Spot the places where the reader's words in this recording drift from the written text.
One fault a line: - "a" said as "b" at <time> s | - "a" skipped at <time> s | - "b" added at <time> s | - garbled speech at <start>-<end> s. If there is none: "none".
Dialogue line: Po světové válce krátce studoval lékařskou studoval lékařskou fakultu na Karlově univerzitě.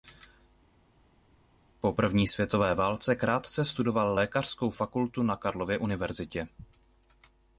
- "první" added at 1.9 s
- "studoval lékařskou" skipped at 4.7 s